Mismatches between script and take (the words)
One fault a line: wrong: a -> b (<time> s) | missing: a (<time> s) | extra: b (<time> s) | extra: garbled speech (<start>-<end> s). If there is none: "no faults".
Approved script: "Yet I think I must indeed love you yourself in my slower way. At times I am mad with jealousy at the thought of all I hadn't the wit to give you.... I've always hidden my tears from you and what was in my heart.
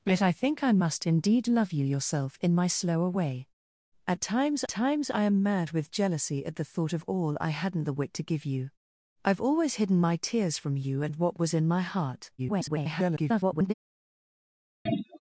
extra: times (4.7 s)
extra: garbled speech (12.4-13.7 s)